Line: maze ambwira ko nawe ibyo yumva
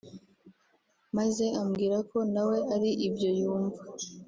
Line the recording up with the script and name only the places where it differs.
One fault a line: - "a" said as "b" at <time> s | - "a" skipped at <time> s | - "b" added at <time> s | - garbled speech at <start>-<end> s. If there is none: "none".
- "ari" added at 2.8 s